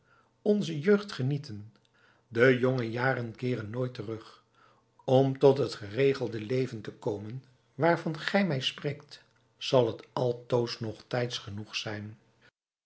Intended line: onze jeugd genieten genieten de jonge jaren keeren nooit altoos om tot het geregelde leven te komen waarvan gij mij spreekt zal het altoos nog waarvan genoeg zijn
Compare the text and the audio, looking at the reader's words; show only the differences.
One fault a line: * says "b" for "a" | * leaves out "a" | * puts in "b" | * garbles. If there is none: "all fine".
* leaves out "genieten"
* says "terug" for "altoos"
* says "tijds" for "waarvan"